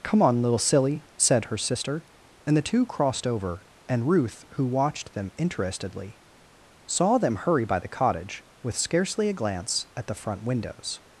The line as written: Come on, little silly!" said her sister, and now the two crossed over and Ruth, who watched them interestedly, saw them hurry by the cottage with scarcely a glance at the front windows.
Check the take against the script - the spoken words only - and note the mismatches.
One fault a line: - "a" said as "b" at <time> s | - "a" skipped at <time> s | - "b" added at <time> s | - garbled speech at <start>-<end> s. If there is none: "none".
- "now" skipped at 2.6 s